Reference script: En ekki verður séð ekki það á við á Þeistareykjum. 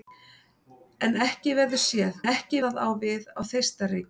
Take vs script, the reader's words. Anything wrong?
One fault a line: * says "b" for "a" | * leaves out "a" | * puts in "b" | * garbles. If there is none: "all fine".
all fine